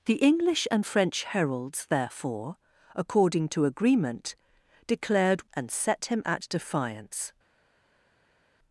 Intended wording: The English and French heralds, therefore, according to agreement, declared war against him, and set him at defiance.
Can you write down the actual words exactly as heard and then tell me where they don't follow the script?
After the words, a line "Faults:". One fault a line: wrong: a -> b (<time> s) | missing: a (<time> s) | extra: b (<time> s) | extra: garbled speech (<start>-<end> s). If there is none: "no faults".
The English and French heralds, therefore, according to agreement, declared and set him at defiance.
Faults:
missing: war against him (5.5 s)